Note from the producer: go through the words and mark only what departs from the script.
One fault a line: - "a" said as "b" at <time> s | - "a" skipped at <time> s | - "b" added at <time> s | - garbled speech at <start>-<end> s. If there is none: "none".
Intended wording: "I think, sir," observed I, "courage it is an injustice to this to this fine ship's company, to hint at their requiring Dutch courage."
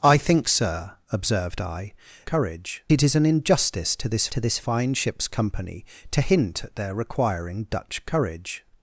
none